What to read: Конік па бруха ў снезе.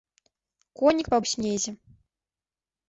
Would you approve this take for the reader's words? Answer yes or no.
no